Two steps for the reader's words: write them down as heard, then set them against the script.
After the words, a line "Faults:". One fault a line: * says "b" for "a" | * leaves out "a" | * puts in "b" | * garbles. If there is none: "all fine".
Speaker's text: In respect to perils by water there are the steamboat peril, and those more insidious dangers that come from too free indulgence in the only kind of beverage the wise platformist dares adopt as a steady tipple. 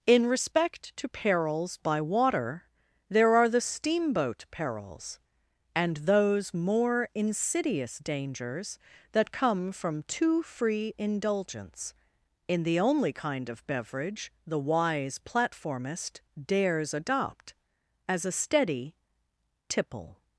In respect to perils by water there are the steamboat perils, and those more insidious dangers that come from too free indulgence in the only kind of beverage the wise platformist dares adopt as a steady tipple.
Faults:
* says "perils" for "peril"